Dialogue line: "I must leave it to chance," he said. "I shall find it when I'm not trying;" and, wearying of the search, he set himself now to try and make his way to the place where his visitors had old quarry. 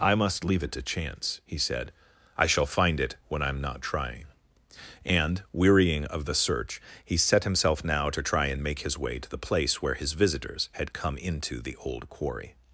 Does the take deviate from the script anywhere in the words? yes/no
yes